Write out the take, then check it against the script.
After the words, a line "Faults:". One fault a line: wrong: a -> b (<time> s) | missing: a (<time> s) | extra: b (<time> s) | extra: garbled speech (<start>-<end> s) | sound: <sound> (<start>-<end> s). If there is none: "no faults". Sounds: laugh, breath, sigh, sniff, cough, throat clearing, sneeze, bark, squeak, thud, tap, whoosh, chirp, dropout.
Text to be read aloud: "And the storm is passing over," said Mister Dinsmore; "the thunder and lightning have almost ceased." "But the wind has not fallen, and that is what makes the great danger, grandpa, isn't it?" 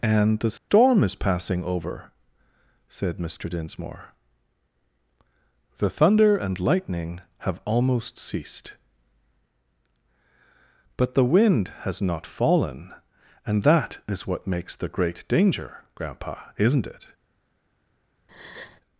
"And the storm is passing over," said Mister Dinsmore; "the thunder and lightning have almost ceased." "But the wind has not fallen, and that is what makes the great danger, grandpa, isn't it?"
Faults:
sound: dropout (0.6-0.7 s)
sound: breath (18.3-18.8 s)